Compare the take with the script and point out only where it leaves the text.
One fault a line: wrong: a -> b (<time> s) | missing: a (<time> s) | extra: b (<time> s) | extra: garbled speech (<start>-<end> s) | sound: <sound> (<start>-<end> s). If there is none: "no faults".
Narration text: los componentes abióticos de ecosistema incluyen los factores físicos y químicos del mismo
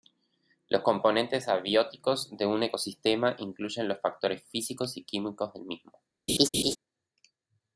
extra: un (2.5 s)
sound: laugh (6.3-6.8 s)